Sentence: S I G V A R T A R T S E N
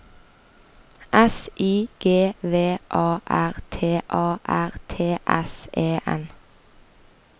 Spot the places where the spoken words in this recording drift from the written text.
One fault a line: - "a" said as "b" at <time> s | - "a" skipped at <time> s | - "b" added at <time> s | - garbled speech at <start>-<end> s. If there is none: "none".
none